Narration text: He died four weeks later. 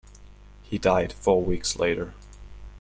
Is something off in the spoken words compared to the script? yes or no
no